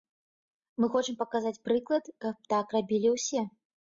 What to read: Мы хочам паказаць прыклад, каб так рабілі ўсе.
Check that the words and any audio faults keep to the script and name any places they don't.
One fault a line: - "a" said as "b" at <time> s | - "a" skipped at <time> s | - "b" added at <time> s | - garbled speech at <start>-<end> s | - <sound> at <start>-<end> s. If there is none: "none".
none